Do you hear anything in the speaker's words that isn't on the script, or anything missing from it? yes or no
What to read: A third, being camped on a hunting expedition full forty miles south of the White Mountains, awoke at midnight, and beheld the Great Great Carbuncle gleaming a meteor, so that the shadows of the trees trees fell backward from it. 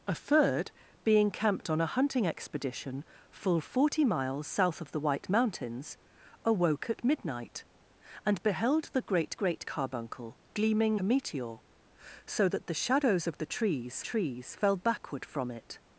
no